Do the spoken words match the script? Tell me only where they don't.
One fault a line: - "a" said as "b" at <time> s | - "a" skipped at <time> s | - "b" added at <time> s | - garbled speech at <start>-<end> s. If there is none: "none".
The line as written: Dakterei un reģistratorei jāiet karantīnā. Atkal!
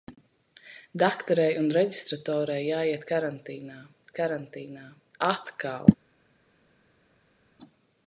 - "karantīnā" added at 4.2 s